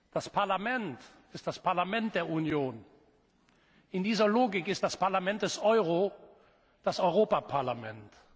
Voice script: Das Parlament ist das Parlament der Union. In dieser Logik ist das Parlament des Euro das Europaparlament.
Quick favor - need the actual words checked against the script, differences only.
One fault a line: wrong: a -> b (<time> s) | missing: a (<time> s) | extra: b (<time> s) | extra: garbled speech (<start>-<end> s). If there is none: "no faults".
no faults